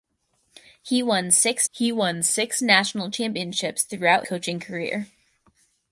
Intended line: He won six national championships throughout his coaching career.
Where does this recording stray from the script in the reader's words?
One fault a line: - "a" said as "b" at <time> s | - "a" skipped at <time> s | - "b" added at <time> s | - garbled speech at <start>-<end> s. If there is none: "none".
- "he won six" added at 1.7 s
- "his" skipped at 4.3 s